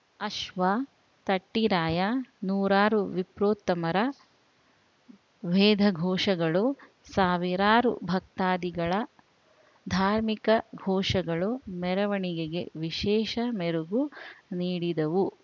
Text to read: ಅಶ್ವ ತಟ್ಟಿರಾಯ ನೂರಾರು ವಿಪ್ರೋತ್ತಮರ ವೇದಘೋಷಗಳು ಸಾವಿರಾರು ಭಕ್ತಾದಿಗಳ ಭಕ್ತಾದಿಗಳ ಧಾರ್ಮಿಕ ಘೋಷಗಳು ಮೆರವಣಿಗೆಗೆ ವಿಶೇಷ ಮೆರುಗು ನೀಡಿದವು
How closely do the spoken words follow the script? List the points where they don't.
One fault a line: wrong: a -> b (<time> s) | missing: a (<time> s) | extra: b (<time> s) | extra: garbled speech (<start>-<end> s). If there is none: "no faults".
missing: ಭಕ್ತಾದಿಗಳ (8.9 s)